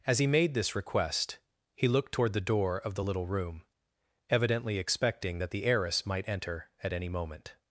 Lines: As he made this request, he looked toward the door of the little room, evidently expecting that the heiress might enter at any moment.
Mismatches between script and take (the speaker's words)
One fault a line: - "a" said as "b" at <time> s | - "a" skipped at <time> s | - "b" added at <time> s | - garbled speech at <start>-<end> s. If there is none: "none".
none